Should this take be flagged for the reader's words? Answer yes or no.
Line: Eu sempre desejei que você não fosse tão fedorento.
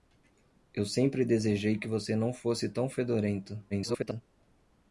yes